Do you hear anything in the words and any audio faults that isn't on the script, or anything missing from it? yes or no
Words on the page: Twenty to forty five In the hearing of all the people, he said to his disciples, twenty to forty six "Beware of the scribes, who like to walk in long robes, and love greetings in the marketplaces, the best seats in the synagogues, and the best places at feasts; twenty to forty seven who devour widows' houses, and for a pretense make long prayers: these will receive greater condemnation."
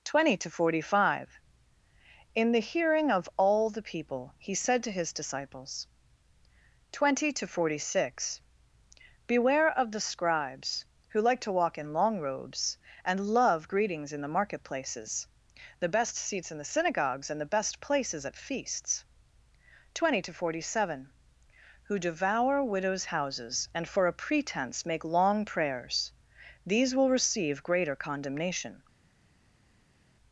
no